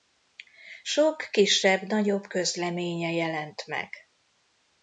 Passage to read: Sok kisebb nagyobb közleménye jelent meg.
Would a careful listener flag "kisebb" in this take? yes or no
no